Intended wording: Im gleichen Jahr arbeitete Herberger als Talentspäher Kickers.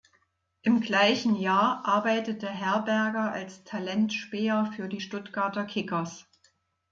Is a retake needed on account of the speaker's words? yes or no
yes